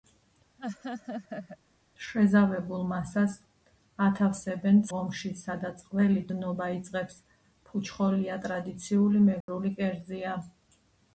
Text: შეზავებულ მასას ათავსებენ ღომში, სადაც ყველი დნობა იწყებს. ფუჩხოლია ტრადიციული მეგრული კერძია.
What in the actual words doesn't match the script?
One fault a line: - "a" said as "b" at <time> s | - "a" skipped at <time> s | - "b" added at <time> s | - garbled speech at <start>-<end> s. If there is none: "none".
none